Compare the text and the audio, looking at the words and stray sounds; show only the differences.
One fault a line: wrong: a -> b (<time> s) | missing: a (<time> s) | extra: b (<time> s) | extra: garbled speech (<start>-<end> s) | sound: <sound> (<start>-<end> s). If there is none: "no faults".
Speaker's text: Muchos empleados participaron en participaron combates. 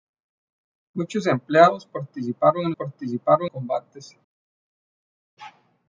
no faults